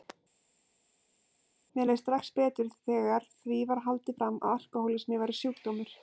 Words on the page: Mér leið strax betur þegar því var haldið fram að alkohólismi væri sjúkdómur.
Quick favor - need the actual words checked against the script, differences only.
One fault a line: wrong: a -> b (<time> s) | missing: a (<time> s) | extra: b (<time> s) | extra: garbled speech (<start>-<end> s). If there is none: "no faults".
no faults